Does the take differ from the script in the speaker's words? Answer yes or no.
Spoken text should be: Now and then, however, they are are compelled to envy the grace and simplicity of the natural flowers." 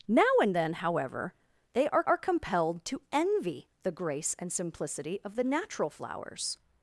no